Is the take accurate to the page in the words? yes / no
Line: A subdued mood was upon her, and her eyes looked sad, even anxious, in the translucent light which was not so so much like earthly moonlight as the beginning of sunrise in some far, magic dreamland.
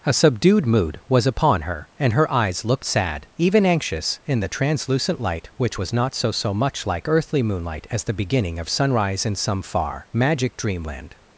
yes